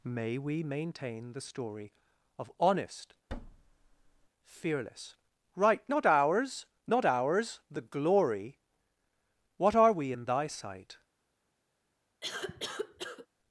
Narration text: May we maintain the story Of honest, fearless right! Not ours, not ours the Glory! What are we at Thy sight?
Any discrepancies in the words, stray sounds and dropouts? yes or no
yes